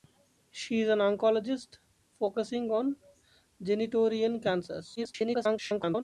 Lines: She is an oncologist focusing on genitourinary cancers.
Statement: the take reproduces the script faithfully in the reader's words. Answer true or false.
false